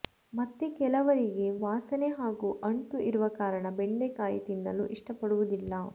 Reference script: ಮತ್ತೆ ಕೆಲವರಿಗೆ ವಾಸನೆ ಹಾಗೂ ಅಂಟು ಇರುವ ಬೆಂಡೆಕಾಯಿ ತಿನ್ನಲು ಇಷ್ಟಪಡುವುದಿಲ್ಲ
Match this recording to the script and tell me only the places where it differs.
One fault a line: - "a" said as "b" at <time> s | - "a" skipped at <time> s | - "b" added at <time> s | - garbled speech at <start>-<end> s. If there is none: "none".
- "ಕಾರಣ" added at 3.4 s